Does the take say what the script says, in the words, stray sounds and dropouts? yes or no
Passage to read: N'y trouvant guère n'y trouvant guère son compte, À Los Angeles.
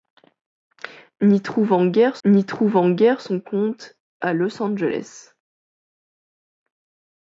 yes